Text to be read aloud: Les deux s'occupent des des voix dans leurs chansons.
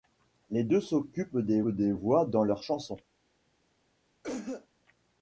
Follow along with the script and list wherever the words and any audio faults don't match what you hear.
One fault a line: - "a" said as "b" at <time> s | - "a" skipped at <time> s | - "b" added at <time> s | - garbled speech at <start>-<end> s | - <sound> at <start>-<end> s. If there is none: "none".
- cough at 4.2-4.7 s